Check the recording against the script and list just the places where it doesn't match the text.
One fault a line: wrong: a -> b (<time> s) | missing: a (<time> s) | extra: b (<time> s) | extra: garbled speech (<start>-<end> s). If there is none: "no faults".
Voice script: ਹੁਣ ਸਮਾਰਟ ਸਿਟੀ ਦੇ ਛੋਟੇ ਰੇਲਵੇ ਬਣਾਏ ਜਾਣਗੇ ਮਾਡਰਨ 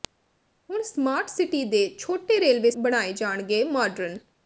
no faults